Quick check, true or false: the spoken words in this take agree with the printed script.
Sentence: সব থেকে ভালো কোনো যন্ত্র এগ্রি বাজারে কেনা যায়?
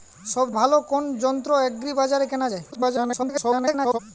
false